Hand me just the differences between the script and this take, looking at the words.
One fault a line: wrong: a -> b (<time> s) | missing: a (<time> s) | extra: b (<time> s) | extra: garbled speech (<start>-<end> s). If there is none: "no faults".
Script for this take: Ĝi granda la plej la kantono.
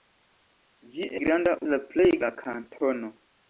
no faults